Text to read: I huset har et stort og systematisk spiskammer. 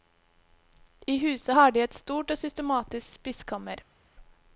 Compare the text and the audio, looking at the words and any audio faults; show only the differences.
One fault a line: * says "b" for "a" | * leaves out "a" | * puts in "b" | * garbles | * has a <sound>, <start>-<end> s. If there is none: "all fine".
* puts in "de"